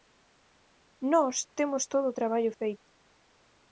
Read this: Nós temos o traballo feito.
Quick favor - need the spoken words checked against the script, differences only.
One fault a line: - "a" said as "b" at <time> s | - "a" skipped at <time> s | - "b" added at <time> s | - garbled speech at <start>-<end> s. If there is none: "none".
- "todo" added at 1.9 s